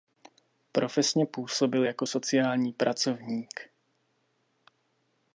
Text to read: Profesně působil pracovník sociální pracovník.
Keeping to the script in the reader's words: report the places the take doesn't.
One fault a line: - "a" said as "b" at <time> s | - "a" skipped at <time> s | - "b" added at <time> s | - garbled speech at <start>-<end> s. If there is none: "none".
- "pracovník" said as "jako" at 1.8 s